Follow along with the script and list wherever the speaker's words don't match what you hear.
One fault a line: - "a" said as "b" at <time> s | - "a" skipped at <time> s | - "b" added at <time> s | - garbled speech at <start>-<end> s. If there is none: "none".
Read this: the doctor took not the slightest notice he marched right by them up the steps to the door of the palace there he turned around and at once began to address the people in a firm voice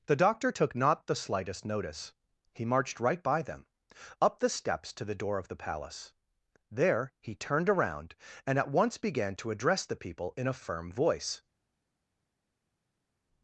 none